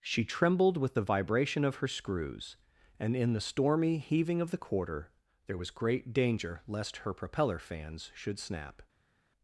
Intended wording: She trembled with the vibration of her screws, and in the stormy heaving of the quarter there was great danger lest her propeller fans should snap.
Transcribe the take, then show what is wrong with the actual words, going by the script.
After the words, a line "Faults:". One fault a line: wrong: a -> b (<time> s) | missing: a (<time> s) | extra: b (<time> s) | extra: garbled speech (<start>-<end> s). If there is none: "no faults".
She trembled with the vibration of her screws, and in the stormy heaving of the quarter there was great danger lest her propeller fans should snap.
Faults:
no faults